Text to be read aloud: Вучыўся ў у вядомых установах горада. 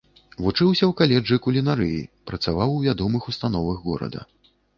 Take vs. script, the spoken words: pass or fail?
fail